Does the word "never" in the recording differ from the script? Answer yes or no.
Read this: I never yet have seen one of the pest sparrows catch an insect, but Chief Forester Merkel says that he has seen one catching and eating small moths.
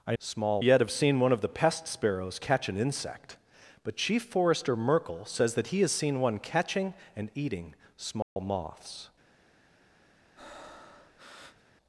yes